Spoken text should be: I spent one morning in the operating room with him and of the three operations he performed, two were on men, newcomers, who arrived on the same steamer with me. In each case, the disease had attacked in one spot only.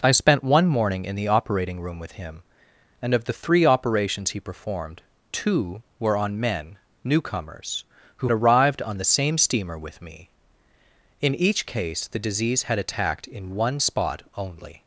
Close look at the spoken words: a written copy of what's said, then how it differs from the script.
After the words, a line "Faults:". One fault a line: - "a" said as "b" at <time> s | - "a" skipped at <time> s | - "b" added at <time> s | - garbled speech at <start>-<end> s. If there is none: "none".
I spent one morning in the operating room with him and of the three operations he performed, two were on men, newcomers, who arrived on the same steamer with me. In each case, the disease had attacked in one spot only.
Faults:
none